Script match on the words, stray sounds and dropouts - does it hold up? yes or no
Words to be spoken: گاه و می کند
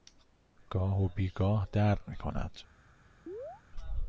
no